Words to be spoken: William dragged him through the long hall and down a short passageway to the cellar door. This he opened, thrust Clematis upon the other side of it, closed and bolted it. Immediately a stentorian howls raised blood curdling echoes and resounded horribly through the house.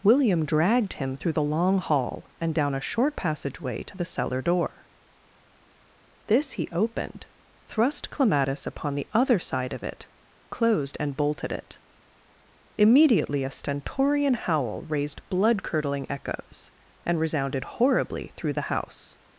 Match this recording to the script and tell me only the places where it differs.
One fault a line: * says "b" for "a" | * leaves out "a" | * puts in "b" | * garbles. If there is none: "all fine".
* says "howl" for "howls"